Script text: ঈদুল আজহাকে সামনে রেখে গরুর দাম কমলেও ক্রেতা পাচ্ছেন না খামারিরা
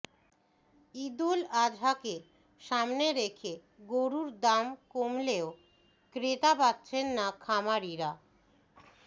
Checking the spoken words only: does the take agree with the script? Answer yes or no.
yes